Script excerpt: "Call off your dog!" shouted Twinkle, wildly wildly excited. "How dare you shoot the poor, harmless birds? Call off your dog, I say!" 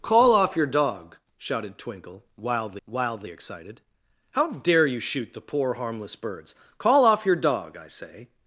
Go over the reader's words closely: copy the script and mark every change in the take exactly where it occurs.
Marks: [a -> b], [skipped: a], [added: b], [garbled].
"Call off your dog!" shouted Twinkle, wildly wildly excited. "How dare you shoot the poor, harmless birds? Call off your dog, I say!"